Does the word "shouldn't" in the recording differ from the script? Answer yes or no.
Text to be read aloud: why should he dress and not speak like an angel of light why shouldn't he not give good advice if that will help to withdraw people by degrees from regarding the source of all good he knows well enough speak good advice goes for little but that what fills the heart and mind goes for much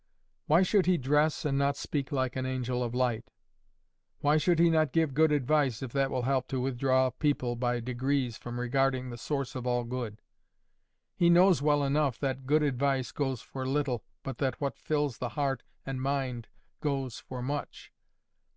yes